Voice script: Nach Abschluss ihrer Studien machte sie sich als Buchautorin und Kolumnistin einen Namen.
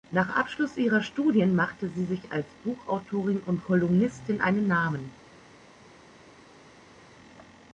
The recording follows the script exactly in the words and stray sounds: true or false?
true